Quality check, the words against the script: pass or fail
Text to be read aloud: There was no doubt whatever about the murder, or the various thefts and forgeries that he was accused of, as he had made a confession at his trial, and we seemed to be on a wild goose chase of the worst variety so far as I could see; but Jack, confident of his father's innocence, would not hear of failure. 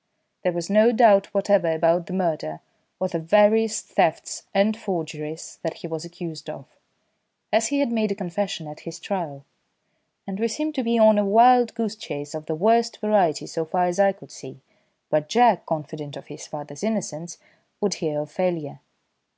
fail